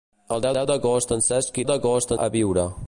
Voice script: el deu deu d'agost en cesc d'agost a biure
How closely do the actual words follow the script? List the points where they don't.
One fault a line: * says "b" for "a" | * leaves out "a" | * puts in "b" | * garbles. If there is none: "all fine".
all fine